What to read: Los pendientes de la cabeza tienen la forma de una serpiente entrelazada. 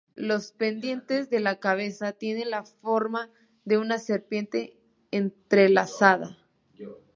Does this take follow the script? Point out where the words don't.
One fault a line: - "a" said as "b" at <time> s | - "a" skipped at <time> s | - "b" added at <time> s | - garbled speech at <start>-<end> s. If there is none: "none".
none